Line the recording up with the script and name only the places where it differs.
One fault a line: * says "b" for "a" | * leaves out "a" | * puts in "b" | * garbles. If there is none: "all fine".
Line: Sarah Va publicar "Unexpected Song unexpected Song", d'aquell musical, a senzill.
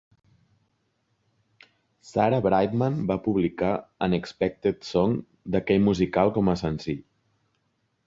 * puts in "Brightman"
* leaves out "unexpected Song"
* puts in "com"